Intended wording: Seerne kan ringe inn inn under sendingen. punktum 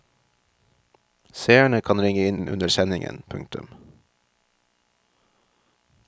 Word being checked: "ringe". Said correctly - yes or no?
yes